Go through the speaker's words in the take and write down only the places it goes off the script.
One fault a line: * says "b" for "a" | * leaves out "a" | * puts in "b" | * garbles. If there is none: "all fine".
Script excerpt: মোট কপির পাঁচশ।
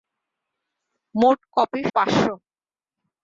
all fine